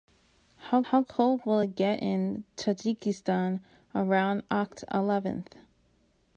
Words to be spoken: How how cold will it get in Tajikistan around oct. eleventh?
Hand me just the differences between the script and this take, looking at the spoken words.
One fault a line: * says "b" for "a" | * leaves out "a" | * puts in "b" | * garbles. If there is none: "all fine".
all fine